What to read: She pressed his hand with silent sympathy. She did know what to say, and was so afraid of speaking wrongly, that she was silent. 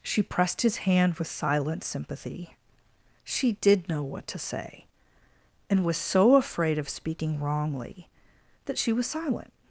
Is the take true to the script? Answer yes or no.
yes